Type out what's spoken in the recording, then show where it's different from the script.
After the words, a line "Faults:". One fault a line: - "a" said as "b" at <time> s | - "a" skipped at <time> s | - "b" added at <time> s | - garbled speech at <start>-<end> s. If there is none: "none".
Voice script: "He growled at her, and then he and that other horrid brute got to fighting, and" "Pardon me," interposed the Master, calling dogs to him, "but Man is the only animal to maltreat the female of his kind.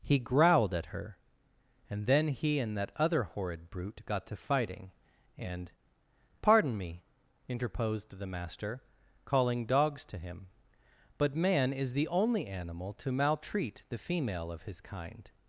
"He growled at her, and then he and that other horrid brute got to fighting, and" "Pardon me," interposed the Master, calling dogs to him, "but Man is the only animal to maltreat the female of his kind.
Faults:
none